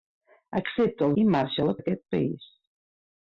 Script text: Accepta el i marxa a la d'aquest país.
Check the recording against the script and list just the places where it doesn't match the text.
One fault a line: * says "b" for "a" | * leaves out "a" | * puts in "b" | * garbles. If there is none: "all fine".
all fine